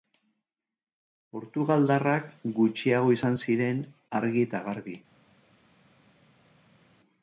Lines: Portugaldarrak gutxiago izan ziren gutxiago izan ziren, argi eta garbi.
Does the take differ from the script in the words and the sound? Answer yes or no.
yes